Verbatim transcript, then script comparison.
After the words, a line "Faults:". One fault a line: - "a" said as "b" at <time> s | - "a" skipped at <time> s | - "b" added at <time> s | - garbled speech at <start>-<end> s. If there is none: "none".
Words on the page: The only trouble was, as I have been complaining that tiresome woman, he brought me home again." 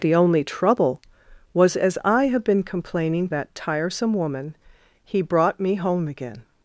The only trouble was, as I have been complaining that tiresome woman, he brought me home again."
Faults:
none